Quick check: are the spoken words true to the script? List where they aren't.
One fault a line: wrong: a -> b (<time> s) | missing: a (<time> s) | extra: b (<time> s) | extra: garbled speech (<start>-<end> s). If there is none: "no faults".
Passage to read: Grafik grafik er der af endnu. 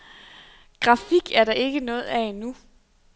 missing: grafik (1.3 s)
extra: ikke noget (1.5 s)